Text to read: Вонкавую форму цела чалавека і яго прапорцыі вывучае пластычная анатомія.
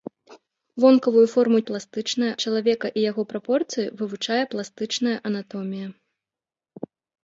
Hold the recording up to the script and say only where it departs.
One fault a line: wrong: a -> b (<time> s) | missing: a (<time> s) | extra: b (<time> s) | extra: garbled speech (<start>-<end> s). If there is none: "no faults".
wrong: цела -> пластычная (1.7 s)